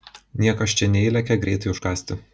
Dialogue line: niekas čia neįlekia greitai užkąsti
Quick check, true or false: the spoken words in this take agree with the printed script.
true